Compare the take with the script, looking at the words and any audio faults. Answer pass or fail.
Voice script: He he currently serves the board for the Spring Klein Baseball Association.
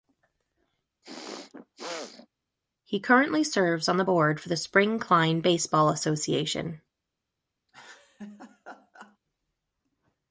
fail